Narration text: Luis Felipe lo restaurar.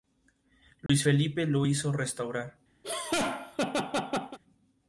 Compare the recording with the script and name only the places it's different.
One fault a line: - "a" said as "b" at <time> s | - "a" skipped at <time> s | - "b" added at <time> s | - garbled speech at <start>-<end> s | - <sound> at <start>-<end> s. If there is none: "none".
- dropout at 0.9-0.9 s
- "hizo" added at 1.6 s
- laugh at 2.8-4.4 s